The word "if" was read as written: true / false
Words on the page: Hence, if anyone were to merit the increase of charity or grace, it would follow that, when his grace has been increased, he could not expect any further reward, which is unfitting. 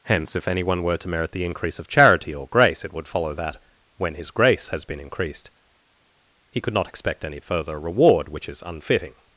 true